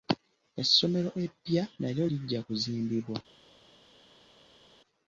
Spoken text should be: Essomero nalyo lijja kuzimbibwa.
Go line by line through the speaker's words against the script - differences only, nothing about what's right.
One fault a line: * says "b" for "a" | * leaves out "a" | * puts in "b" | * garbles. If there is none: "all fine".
* puts in "eppya"